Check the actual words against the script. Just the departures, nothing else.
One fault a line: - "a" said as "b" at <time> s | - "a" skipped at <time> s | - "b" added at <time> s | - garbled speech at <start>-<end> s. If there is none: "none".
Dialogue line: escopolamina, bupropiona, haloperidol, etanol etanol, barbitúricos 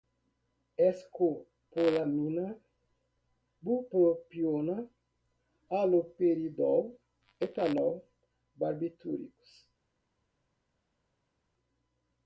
- "etanol" skipped at 8.0 s